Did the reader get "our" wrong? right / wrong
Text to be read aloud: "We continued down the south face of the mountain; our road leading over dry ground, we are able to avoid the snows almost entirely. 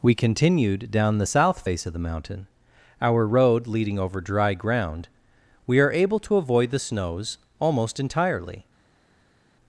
right